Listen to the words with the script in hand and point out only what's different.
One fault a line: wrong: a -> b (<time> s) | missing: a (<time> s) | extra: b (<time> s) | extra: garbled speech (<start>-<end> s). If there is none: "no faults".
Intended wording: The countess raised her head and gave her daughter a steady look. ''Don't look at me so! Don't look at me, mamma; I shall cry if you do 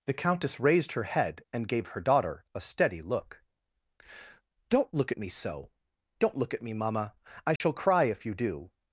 no faults